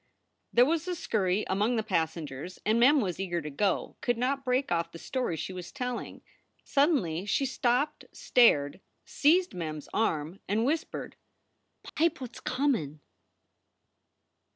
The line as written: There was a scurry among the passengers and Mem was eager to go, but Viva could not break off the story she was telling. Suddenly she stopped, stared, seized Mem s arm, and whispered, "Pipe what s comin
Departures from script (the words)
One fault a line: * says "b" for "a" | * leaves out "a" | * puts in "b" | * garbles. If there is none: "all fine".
* leaves out "but Viva"